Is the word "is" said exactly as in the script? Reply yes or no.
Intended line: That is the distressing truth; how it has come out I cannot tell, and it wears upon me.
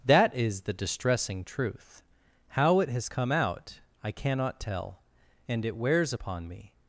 yes